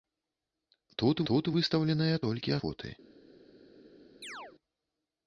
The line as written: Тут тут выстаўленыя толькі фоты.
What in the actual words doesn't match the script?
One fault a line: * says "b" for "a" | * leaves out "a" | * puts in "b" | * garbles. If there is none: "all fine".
all fine